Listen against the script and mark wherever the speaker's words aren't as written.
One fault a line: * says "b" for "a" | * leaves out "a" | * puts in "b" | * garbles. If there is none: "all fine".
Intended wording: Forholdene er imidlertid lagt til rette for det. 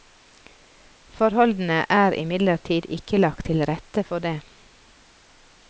* puts in "ikke"